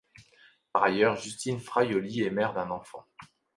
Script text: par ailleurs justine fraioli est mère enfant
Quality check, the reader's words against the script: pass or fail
fail